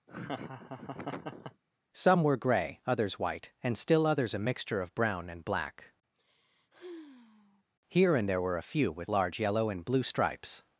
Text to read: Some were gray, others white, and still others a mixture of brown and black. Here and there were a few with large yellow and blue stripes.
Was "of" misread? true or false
false